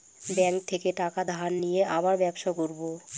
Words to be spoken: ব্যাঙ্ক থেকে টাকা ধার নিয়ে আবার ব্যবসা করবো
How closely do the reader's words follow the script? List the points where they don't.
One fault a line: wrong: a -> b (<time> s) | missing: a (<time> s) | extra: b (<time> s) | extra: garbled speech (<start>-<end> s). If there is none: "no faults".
no faults